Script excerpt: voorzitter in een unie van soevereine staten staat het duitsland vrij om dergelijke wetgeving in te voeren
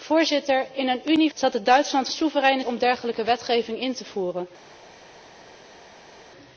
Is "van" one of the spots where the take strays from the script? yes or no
yes